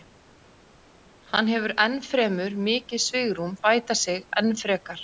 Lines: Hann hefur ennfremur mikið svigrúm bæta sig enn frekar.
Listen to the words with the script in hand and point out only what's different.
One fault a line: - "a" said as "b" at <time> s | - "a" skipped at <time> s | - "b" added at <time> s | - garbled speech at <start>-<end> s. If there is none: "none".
none